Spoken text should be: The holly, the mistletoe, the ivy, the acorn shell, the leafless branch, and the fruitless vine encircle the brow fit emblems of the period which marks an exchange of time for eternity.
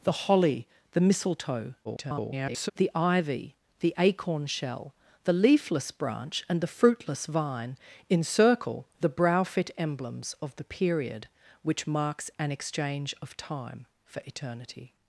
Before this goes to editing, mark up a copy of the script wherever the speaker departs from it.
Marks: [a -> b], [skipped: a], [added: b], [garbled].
The holly, the mistletoe, [garbled] the ivy, the acorn shell, the leafless branch, and the fruitless vine encircle the brow fit emblems of the period which marks an exchange of time for eternity.